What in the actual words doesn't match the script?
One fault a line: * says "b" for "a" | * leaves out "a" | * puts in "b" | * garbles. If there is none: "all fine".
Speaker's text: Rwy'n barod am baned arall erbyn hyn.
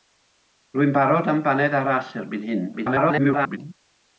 * garbles